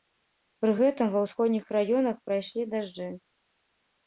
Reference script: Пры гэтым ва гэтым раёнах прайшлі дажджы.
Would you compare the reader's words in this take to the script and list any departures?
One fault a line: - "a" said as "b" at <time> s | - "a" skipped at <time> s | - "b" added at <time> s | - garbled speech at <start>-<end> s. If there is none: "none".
- "гэтым" said as "ўсходніх" at 1.2 s